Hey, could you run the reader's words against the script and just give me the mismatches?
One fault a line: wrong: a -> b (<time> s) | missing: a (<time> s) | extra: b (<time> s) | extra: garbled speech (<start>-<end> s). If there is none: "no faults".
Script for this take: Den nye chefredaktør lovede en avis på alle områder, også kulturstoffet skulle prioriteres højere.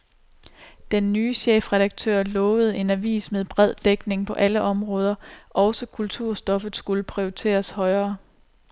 extra: med bred dækning (3.3 s)